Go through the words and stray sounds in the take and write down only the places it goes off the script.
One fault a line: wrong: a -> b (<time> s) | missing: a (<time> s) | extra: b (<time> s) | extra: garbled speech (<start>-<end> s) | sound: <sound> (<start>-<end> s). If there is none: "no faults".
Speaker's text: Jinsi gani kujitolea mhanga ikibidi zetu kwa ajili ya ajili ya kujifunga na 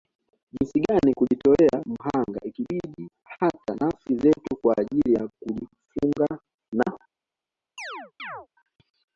extra: hata nafsi (3.2 s)
missing: ajili ya (5.3 s)
sound: chirp (7.8-8.5 s)